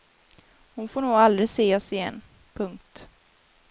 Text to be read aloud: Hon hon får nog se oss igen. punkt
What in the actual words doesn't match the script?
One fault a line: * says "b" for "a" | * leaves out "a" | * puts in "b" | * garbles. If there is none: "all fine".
* leaves out "hon"
* puts in "aldrig"